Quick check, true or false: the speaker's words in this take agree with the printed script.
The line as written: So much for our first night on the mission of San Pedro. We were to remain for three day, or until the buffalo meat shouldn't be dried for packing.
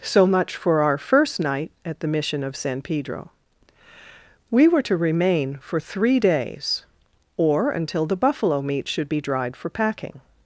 false